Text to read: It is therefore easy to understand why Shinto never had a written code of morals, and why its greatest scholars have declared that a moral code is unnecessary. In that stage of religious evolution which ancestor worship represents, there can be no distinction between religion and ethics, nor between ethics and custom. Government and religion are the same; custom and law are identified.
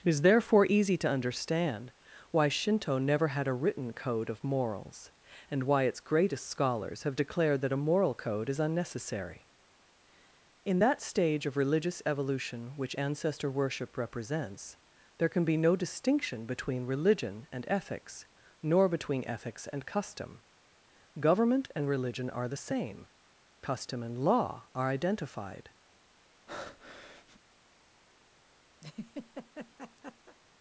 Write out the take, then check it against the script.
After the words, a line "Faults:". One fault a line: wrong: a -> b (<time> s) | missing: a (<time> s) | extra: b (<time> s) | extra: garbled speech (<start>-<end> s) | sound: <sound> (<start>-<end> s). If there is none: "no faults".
It is therefore easy to understand why Shinto never had a written code of morals, and why its greatest scholars have declared that a moral code is unnecessary. In that stage of religious evolution which ancestor worship represents, there can be no distinction between religion and ethics, nor between ethics and custom. Government and religion are the same; custom and law are identified.
Faults:
sound: breath (26.5-27.4 s)
sound: laugh (28.8-30.4 s)